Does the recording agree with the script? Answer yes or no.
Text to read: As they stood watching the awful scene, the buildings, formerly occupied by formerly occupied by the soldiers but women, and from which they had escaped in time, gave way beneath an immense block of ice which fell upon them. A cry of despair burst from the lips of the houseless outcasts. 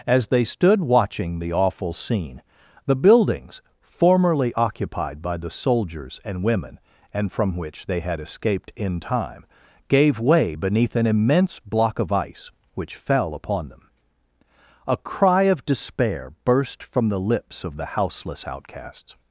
no